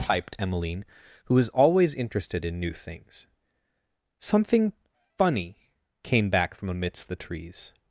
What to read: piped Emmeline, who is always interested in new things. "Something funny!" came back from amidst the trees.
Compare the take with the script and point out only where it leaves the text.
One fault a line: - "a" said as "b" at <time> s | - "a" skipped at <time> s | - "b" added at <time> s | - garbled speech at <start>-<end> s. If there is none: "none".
- "is" said as "was" at 1.4 s